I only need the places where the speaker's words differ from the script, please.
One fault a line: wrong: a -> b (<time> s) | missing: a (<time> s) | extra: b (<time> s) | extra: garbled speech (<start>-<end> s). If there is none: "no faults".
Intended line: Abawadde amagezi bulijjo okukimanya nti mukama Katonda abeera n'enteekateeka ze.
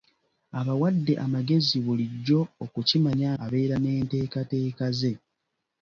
missing: nti mukama Katonda (3.3 s)